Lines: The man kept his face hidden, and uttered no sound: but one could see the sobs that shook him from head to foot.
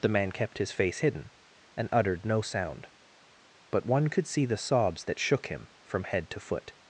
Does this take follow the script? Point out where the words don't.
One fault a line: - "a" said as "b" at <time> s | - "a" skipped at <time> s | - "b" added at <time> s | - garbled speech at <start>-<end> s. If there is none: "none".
none